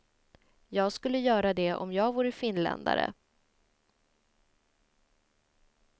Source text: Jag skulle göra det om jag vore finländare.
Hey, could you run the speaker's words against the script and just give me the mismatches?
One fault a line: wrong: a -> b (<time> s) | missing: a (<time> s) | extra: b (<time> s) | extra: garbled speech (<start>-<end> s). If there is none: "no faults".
no faults